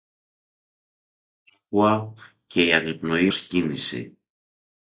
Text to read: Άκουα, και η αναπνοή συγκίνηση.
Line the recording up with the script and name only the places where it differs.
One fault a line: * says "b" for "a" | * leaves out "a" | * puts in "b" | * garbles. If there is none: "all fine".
all fine